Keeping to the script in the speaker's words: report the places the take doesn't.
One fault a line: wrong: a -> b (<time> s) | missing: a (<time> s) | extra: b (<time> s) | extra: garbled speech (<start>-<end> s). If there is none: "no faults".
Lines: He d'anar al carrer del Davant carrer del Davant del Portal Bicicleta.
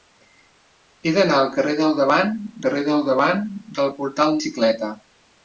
no faults